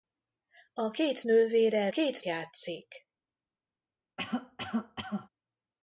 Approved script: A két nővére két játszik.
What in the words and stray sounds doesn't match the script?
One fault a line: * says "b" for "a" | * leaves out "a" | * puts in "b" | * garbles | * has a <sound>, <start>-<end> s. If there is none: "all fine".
* has a cough, 4.2-5.3 s